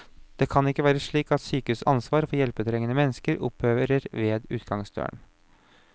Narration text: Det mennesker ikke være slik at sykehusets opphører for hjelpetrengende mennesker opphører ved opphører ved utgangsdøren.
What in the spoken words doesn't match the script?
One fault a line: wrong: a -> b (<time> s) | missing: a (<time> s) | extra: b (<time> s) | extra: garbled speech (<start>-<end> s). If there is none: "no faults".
wrong: mennesker -> kan (0.5 s)
wrong: opphører -> ansvar (1.9 s)
missing: opphører ved (4.5 s)